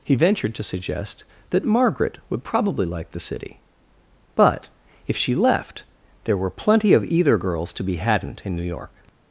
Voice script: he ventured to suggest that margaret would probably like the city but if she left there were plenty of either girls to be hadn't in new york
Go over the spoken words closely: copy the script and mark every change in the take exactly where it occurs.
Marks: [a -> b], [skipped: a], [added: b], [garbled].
he ventured to suggest that margaret would probably like the city but if she left there were plenty of either girls to be hadn't in new york